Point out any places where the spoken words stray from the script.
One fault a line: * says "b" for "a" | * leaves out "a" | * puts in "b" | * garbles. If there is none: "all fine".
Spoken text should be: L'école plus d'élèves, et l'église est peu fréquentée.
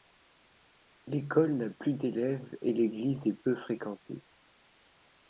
* puts in "n'a"